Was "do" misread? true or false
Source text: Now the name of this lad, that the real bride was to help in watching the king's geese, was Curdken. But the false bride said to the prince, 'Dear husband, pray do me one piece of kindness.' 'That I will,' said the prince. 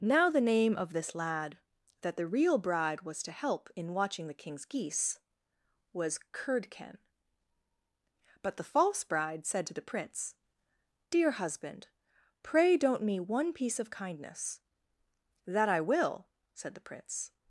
true